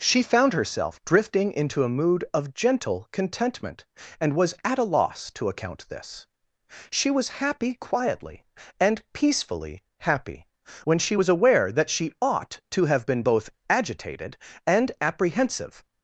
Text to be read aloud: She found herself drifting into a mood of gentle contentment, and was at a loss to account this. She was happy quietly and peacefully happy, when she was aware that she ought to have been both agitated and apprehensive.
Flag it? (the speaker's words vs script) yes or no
no